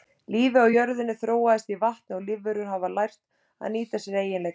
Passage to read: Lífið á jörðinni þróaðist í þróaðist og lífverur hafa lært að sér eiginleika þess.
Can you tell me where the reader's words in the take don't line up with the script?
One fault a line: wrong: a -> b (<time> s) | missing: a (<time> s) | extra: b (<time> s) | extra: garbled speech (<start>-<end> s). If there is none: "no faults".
wrong: þróaðist -> vatni (1.8 s)
extra: nýta (3.8 s)